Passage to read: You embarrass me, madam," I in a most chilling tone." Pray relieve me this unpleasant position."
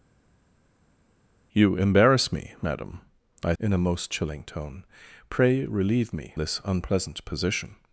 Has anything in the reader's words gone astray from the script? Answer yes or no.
no